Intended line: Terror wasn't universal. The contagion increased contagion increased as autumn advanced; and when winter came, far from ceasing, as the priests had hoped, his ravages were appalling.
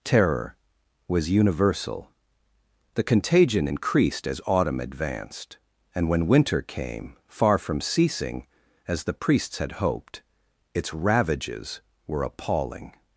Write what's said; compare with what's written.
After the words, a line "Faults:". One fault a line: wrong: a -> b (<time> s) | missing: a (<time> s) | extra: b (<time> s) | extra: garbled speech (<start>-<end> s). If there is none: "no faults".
Terror was universal. The contagion increased as autumn advanced; and when winter came, far from ceasing, as the priests had hoped, its ravages were appalling.
Faults:
wrong: wasn't -> was (1.1 s)
missing: contagion increased (4.3 s)
wrong: his -> its (10.7 s)